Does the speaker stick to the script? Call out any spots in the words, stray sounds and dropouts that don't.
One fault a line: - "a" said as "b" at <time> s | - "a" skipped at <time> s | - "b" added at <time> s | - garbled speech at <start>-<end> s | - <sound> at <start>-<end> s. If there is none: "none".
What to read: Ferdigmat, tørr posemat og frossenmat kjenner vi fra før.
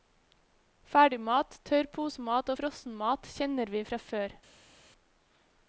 none